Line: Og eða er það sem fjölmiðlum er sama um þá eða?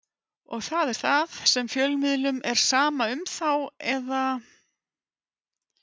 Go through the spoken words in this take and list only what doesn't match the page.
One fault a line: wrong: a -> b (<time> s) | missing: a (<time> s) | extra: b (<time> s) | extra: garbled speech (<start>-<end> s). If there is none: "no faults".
wrong: eða -> það (0.7 s)